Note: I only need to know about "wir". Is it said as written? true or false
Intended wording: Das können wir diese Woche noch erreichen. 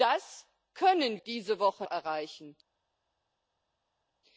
false